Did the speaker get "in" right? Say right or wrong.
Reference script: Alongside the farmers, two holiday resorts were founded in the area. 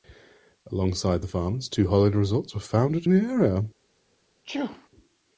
wrong